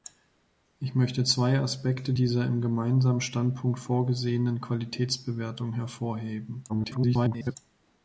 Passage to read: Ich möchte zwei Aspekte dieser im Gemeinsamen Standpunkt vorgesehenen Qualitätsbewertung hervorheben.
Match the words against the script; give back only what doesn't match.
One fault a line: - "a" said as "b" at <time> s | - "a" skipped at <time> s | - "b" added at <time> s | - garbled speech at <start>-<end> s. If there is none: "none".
- garbled speech at 6.7-7.6 s